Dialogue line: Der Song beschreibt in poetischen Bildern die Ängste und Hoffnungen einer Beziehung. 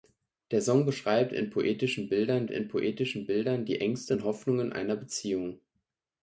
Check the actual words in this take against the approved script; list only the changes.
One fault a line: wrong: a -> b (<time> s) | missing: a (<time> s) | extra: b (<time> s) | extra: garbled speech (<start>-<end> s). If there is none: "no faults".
extra: in poetischen Bildern (2.5 s)